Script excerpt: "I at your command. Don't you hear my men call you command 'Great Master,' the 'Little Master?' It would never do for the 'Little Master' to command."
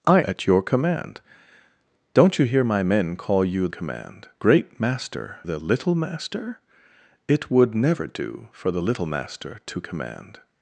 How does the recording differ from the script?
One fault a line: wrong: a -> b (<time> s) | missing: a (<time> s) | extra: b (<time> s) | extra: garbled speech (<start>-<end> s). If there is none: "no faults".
no faults